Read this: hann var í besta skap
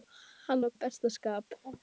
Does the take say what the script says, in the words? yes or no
yes